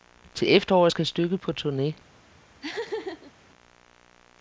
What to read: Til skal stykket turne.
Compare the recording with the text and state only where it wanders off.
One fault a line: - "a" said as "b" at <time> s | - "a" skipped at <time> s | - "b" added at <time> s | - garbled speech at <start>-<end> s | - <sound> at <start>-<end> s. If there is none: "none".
- "efteråret" added at 0.5 s
- "på" added at 1.4 s
- laugh at 2.6-3.3 s